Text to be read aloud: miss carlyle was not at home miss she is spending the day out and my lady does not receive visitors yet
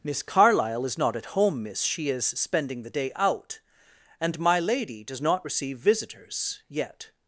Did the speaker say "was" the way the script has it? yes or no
no